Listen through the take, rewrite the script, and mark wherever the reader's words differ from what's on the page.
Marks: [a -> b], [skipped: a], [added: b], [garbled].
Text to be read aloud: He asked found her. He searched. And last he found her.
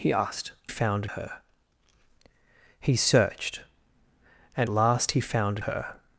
He asked found her. He searched. And last he found her.